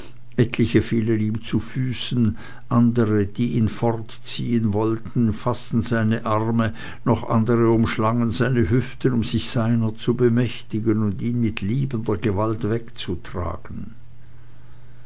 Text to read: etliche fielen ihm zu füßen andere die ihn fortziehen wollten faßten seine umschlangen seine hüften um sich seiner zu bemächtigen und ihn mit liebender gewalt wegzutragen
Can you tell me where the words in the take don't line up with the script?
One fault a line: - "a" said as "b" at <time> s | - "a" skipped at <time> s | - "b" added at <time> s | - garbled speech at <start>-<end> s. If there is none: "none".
- "arme noch andere" added at 6.2 s